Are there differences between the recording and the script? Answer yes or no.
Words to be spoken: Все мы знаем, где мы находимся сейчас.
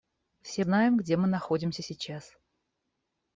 yes